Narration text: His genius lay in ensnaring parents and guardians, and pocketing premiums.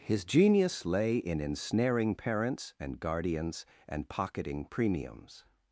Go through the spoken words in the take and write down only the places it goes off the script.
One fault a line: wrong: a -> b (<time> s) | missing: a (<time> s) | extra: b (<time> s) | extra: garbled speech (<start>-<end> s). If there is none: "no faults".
no faults